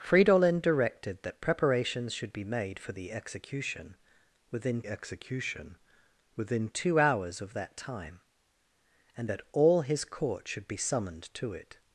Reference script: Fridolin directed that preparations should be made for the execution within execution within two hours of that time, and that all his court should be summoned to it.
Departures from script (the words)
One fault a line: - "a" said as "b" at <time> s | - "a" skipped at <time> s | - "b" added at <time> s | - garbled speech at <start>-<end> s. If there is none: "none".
none